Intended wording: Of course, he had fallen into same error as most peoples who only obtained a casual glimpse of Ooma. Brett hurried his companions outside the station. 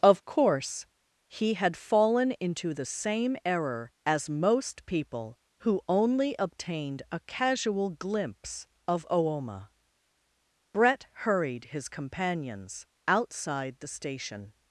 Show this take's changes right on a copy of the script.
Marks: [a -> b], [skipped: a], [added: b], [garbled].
Of course, he had fallen into [added: the] same error as most [peoples -> people] who only obtained a casual glimpse of Ooma. Brett hurried his companions outside the station.